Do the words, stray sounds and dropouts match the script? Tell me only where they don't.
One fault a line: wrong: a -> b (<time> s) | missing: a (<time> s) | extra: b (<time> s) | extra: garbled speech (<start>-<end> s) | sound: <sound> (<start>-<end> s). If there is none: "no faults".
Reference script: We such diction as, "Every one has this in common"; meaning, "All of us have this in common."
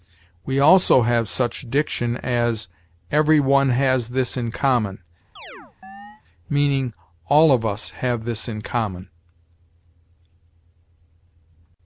extra: also have (0.6 s)
sound: chirp (5.4-6.2 s)